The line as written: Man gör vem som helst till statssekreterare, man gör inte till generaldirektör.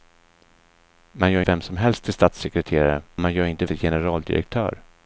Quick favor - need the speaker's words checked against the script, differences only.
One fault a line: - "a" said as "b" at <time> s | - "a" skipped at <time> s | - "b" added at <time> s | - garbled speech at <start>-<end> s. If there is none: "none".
none